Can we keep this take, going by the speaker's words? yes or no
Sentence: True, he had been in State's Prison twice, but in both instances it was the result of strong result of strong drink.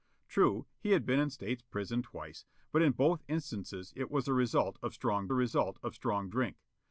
yes